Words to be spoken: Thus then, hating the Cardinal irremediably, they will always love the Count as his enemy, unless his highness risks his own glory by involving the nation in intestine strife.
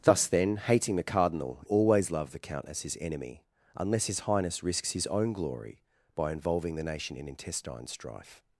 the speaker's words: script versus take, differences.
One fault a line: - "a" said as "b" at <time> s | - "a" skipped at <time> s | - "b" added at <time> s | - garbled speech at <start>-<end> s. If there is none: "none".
- "irremediably they will" skipped at 1.6 s